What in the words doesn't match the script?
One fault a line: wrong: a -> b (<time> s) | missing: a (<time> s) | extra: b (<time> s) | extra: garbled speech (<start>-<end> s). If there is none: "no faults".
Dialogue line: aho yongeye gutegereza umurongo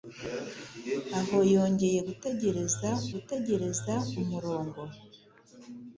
extra: gutegereza (3.1 s)